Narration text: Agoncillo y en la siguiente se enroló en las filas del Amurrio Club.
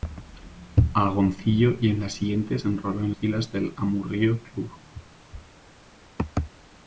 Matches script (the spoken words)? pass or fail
fail